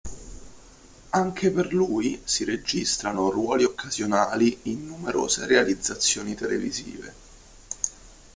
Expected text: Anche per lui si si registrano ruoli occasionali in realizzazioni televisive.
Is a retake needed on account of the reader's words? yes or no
yes